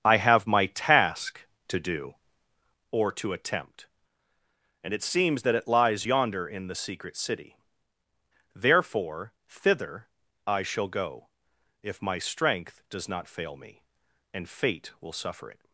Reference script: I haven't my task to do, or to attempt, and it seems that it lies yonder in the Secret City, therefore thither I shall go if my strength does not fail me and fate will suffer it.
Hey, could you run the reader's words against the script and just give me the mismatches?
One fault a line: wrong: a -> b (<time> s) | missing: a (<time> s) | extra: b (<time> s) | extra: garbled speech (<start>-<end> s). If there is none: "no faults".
wrong: haven't -> have (0.2 s)